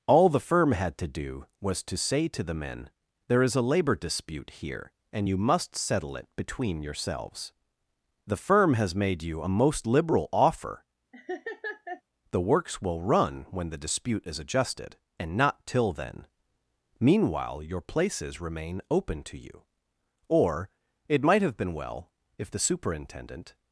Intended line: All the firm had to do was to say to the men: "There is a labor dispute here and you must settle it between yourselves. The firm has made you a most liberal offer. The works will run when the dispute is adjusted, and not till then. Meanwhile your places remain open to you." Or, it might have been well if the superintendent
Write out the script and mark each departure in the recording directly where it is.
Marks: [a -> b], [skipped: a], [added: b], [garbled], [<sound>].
All the firm had to do was to say to the men: "There is a labor dispute here and you must settle it between yourselves. The firm has made you a most liberal offer. [laugh] The works will run when the dispute is adjusted, and not till then. Meanwhile your places remain open to you." Or, it might have been well if the superintendent